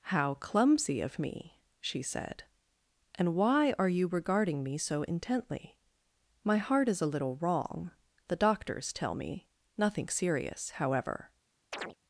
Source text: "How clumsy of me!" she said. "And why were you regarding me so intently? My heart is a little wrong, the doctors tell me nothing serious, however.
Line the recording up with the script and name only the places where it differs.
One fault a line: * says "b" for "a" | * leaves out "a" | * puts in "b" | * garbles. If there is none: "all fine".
* says "are" for "were"